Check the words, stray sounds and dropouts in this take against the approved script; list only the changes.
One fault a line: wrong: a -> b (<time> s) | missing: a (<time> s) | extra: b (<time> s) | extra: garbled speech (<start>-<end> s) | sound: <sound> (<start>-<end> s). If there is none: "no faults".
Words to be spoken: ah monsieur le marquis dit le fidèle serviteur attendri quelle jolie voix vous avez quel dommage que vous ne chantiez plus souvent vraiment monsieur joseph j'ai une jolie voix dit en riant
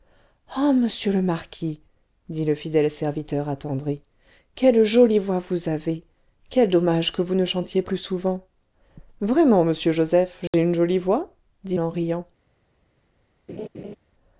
sound: dropout (10.5-10.5 s)
sound: laugh (13.5-14.0 s)